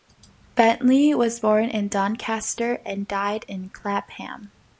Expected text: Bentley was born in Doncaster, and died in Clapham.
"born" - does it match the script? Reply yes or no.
yes